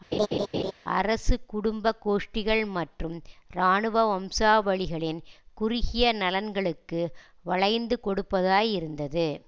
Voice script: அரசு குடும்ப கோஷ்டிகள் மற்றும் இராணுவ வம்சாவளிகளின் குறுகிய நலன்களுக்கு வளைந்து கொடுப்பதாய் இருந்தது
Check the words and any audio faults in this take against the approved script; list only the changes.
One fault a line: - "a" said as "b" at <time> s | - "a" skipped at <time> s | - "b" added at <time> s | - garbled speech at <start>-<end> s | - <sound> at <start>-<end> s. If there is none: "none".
- laugh at 0.1-0.7 s